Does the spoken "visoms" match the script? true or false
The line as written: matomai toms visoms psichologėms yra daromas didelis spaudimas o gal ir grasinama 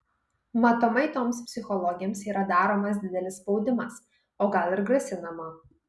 false